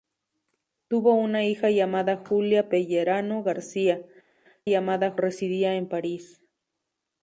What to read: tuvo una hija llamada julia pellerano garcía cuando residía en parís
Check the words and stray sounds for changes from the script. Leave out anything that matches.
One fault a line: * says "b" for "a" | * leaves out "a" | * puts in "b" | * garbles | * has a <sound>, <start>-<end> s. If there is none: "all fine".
* says "llamada" for "cuando"